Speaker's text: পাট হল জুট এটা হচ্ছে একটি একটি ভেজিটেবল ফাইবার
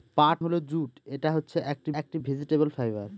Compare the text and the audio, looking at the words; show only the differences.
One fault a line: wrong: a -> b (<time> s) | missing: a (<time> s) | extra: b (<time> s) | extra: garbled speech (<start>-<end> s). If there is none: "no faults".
no faults